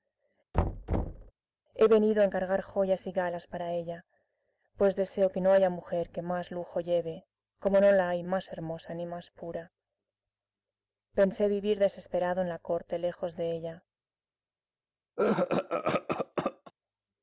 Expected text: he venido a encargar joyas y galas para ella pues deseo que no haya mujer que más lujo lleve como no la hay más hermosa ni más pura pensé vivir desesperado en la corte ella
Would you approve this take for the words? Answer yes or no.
no